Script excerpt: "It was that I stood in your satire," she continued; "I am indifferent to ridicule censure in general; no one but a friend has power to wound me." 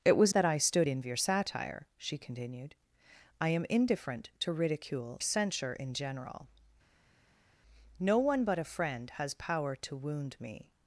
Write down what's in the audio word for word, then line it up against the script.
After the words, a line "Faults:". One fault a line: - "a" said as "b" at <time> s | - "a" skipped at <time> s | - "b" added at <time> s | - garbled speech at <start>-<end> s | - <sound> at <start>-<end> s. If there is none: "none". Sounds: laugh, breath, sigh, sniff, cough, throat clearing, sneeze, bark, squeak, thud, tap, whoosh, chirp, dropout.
"It was that I stood in your satire," she continued; "I am indifferent to ridicule censure in general; no one but a friend has power to wound me."
Faults:
none